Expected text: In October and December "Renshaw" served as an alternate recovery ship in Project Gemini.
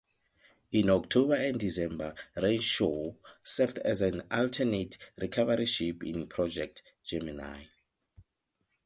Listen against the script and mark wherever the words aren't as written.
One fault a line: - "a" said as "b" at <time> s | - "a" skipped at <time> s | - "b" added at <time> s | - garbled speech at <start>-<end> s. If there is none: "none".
none